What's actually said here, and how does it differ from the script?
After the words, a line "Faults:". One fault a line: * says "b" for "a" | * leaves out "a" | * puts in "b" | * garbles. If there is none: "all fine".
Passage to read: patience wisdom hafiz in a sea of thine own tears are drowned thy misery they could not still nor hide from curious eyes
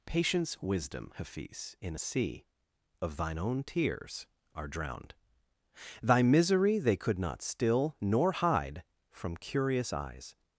patience wisdom hafiz in a sea of thine own tears are drowned thy misery they could not still nor hide from curious eyes
Faults:
all fine